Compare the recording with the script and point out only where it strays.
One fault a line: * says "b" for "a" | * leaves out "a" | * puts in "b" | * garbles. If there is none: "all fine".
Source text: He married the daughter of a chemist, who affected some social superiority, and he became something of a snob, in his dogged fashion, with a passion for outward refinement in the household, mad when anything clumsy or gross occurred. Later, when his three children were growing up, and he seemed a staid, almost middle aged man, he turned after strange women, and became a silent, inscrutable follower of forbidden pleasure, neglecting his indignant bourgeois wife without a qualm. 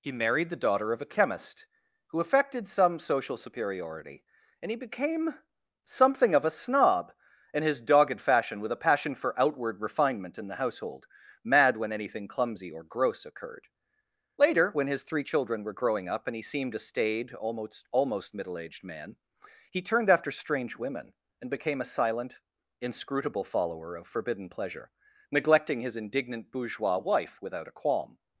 * puts in "almost"